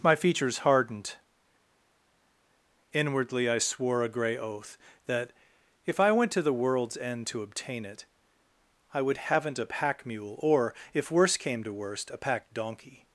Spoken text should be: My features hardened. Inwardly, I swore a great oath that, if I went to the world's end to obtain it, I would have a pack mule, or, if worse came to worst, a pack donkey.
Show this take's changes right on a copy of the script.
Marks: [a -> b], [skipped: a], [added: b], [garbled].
My features hardened. Inwardly, I swore a [great -> grey] oath that, if I went to the world's end to obtain it, I would [have -> haven't] a pack mule, or, if worse came to worst, a pack donkey.